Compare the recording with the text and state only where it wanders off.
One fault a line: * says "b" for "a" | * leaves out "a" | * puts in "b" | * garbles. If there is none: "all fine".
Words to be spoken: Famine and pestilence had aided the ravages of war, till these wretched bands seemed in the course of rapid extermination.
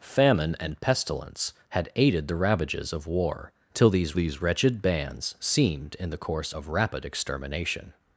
* puts in "these"